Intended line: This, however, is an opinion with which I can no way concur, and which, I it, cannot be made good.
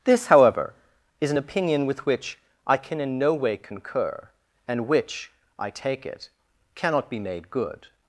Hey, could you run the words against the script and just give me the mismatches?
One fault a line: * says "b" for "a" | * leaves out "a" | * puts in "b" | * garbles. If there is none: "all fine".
* puts in "in"
* puts in "take"